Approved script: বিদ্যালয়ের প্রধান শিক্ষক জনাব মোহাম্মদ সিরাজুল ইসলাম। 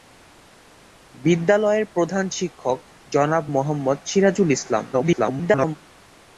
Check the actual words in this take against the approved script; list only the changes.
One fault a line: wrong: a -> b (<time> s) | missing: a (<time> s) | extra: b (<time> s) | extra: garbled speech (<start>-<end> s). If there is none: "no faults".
extra: garbled speech (4.9-5.8 s)